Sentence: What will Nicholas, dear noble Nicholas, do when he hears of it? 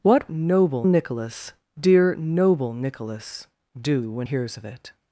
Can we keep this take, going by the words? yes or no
no